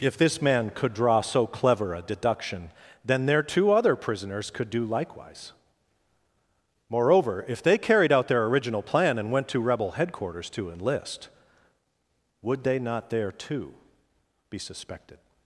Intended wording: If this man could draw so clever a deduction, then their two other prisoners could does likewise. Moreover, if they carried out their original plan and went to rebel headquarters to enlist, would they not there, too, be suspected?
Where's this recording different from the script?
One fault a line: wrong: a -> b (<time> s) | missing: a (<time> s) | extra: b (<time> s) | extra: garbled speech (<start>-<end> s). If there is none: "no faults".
wrong: does -> do (4.7 s)